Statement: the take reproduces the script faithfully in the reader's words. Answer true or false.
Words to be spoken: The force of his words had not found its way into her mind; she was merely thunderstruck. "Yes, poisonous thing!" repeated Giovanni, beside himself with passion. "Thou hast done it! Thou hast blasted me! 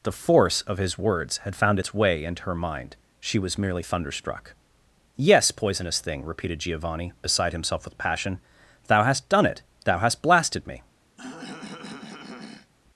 false